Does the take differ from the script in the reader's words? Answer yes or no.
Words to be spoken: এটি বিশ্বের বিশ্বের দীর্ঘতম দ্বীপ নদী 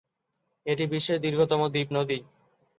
yes